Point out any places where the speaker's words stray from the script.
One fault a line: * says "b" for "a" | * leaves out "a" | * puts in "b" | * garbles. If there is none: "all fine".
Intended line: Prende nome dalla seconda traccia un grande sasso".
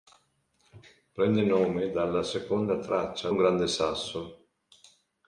all fine